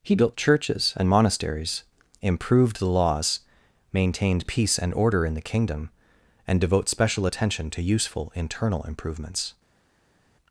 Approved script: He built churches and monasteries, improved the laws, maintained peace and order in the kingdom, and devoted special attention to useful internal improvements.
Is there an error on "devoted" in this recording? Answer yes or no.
yes